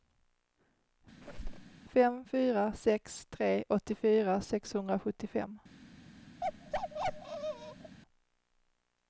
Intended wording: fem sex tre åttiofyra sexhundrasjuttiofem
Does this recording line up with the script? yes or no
no